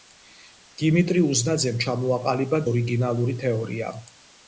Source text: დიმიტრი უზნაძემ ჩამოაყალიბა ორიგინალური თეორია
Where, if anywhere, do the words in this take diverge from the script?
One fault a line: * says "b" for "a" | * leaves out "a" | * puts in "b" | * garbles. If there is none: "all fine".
all fine